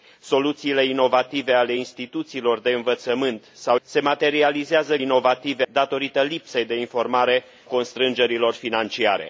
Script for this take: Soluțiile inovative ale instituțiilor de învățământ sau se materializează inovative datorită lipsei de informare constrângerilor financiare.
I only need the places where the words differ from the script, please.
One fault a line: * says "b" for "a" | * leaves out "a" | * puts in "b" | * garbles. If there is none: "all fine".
all fine